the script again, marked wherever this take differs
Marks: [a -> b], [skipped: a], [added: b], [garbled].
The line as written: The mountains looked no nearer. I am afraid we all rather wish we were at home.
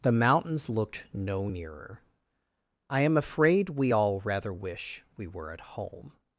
The mountains looked no nearer. I am afraid we all rather wish we were at home.